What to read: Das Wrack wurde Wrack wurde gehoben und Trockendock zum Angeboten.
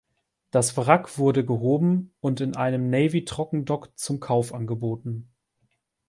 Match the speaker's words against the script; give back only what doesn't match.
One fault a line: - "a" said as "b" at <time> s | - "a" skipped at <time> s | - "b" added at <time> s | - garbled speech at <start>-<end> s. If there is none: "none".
- "Wrack wurde gehoben und" said as "gehoben und in einem Navy" at 1.4 s
- "Kauf" added at 4.2 s